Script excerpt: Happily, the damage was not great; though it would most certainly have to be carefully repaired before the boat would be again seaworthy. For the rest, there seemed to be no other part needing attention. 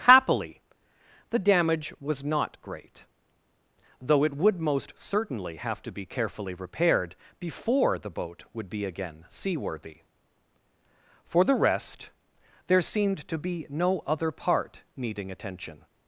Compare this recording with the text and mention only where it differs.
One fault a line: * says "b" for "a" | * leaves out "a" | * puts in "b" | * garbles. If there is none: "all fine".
all fine